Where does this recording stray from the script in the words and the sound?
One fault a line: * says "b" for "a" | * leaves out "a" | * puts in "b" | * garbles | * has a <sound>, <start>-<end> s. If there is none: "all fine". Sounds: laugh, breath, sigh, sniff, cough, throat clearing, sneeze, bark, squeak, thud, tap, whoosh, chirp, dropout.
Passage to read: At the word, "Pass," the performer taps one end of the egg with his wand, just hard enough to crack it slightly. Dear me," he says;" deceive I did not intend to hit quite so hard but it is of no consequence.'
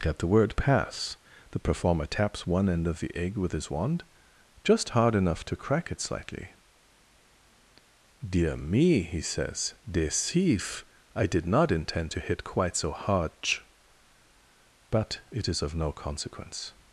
all fine